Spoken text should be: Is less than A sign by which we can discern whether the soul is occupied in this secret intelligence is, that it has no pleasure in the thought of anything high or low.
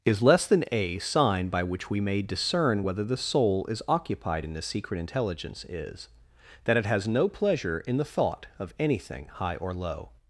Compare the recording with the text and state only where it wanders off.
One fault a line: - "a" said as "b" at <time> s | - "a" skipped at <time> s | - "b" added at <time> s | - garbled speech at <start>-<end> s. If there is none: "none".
- "can" said as "may" at 2.0 s